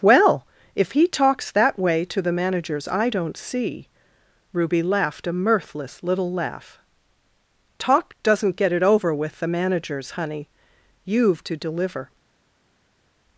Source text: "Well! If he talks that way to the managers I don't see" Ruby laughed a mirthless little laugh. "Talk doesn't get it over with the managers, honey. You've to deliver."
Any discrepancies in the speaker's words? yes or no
no